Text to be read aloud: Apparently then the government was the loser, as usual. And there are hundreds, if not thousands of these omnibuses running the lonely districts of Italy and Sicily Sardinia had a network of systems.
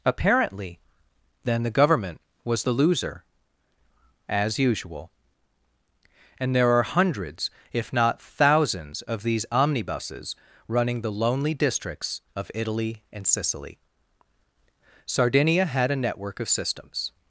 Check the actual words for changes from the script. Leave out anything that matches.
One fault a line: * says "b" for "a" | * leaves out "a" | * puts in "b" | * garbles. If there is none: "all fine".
all fine